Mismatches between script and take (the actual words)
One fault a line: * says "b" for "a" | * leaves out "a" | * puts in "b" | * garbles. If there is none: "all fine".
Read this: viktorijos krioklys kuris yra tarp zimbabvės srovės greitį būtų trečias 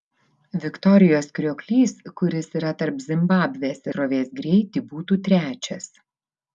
all fine